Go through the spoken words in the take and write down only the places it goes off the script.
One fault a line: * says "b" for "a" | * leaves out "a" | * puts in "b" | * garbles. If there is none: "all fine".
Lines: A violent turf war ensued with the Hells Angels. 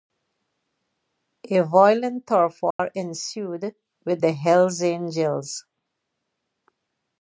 all fine